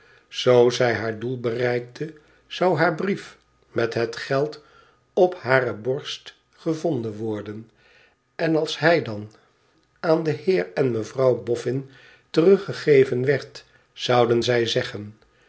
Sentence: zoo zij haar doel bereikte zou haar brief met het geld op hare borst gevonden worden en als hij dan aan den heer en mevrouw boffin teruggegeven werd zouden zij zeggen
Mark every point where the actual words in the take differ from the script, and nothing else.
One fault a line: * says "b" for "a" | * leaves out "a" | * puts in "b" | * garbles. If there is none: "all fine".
all fine